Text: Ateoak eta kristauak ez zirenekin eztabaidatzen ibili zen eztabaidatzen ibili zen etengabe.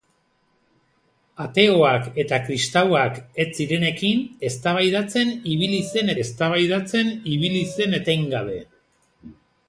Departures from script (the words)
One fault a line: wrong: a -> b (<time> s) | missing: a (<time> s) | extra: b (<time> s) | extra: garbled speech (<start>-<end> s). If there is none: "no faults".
no faults